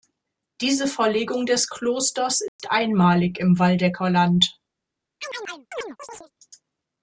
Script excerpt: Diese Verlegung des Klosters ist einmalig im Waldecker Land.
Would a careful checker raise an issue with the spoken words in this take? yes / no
no